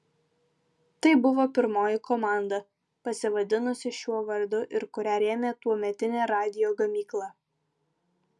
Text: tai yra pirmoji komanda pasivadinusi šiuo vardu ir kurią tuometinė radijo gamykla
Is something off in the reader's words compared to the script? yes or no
yes